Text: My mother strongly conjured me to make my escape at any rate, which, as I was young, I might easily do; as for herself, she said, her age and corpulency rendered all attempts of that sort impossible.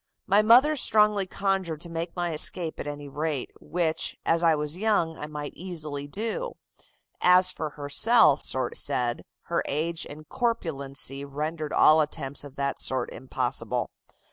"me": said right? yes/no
no